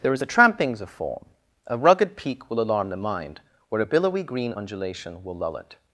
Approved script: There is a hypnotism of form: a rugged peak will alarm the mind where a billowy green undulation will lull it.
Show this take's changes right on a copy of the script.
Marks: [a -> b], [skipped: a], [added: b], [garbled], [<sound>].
There is a [hypnotism -> trampings] of form: a rugged peak will alarm the mind where a billowy green undulation will lull it.